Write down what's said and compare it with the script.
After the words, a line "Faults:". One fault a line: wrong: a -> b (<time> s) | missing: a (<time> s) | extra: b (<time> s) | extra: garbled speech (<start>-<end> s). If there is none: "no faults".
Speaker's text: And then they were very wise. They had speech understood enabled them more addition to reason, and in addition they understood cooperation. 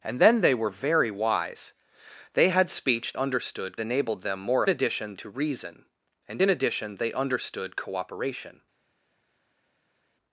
And then they were very wise. They had speech understood enabled them more addition to reason, and in addition they understood cooperation.
Faults:
no faults